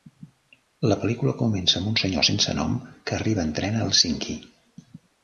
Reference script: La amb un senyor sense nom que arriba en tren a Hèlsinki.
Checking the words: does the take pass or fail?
fail